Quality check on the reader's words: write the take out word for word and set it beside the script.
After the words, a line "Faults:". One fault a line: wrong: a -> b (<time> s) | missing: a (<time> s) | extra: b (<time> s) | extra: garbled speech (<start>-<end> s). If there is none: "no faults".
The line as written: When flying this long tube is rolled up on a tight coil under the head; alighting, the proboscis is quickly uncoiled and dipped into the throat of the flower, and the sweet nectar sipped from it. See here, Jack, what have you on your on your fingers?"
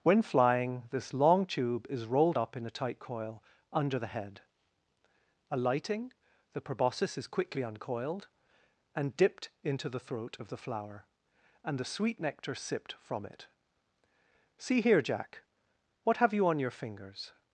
When flying this long tube is rolled up in a tight coil under the head; alighting, the proboscis is quickly uncoiled and dipped into the throat of the flower, and the sweet nectar sipped from it. See here, Jack, what have you on your fingers?"
Faults:
wrong: on -> in (2.5 s)
missing: on your (16.7 s)